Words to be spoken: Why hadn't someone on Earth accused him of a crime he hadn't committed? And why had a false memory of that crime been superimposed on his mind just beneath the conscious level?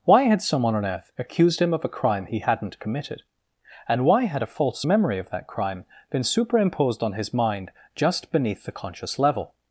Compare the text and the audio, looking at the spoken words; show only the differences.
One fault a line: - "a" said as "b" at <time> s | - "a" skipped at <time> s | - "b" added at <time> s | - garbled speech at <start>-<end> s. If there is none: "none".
- "hadn't" said as "had" at 0.2 s